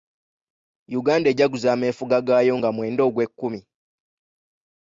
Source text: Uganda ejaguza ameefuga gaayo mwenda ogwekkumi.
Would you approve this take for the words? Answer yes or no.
no